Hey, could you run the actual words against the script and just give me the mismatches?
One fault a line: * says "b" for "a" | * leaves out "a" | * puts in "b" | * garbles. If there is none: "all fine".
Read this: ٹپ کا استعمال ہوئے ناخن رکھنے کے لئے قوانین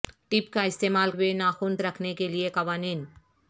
all fine